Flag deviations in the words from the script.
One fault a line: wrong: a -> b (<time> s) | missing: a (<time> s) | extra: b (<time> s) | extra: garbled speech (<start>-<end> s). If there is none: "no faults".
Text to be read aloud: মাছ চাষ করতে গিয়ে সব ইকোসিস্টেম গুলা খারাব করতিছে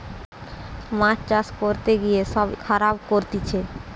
missing: ইকোসিস্টেম গুলা (2.5 s)